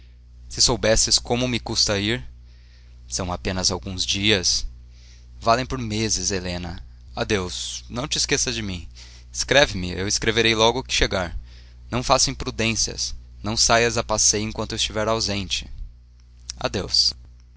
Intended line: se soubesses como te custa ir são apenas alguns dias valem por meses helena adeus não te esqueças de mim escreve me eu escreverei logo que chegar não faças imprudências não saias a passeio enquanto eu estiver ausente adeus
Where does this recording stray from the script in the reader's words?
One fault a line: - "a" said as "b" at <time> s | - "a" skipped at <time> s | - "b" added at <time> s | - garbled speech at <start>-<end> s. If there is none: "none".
- "te" said as "me" at 1.5 s